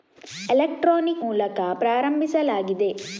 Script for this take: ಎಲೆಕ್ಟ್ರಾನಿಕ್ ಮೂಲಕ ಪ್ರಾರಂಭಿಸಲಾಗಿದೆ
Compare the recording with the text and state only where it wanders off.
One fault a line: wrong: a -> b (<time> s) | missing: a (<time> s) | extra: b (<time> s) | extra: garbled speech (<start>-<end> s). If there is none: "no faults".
no faults